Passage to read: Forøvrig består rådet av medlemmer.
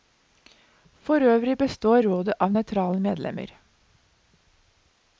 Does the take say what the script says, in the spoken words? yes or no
no